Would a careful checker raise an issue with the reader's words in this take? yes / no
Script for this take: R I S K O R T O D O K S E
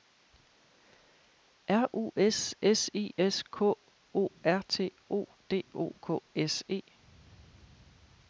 yes